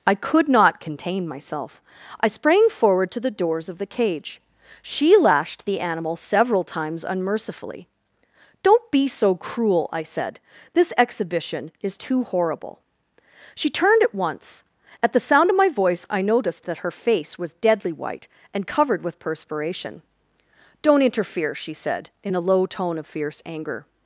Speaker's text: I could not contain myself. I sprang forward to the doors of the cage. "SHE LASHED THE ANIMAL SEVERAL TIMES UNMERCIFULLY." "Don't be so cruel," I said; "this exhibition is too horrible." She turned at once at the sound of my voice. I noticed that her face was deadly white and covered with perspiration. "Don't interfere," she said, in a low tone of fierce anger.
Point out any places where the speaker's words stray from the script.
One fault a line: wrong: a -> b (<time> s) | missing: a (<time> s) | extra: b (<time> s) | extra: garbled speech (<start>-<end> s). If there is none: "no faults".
no faults